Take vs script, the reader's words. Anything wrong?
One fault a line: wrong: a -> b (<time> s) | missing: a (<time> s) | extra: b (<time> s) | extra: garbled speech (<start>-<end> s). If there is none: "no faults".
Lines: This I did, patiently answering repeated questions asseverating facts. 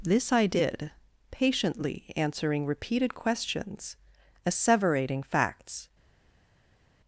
no faults